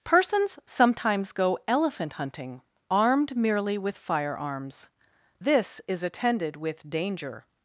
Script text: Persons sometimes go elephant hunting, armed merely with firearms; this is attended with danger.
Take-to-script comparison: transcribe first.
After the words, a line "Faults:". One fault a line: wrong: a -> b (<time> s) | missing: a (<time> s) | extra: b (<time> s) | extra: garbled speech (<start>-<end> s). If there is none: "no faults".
Persons sometimes go elephant hunting, armed merely with firearms; this is attended with danger.
Faults:
no faults